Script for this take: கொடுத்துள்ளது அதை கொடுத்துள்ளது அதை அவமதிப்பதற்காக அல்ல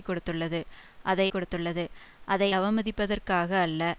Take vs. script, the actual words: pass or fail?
pass